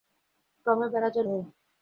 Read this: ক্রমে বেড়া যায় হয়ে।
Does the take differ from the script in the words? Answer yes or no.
no